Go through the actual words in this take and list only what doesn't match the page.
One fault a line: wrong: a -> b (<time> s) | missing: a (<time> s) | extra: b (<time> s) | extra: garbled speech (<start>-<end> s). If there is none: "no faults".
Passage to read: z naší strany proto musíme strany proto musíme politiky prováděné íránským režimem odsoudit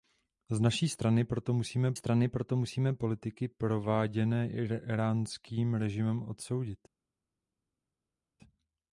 no faults